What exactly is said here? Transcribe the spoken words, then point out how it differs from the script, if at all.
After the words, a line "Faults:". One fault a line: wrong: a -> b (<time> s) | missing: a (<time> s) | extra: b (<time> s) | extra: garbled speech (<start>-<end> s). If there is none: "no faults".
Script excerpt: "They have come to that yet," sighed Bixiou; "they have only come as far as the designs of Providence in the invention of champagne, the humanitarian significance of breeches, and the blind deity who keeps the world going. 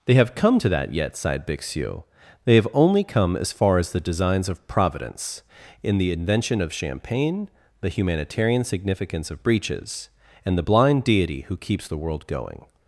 "They have come to that yet," sighed Bixiou; "they have only come as far as the designs of Providence in the invention of champagne, the humanitarian significance of breeches, and the blind deity who keeps the world going.
Faults:
no faults